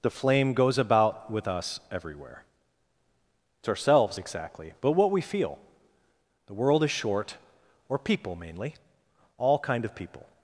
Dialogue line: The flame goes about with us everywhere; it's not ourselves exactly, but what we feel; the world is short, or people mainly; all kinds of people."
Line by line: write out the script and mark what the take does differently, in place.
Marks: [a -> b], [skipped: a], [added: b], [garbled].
The flame goes about with us everywhere; it's [skipped: not] ourselves exactly, but what we feel; the world is short, or people mainly; all [kinds -> kind] of people."